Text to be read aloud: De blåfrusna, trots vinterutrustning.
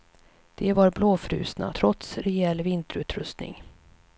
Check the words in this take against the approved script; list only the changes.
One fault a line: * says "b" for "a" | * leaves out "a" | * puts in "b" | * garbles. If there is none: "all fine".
* puts in "var"
* puts in "rejäl"